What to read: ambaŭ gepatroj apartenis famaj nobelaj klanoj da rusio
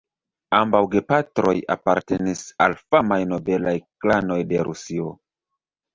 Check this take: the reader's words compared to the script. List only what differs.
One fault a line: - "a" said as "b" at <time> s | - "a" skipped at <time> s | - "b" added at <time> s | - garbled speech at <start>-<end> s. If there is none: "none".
- "al" added at 2.7 s
- "da" said as "de" at 4.5 s